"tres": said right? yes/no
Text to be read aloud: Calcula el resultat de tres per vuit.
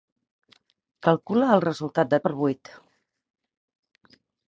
no